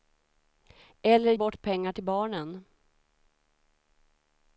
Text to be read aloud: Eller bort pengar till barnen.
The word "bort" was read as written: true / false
true